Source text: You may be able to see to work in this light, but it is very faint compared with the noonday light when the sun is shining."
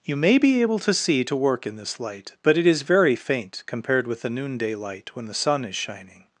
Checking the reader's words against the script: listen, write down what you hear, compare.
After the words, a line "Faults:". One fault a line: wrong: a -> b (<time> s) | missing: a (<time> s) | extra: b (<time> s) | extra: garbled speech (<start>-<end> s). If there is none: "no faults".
You may be able to see to work in this light, but it is very faint compared with the noonday light when the sun is shining."
Faults:
no faults